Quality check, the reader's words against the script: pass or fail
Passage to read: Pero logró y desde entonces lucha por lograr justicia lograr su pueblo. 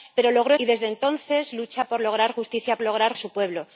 pass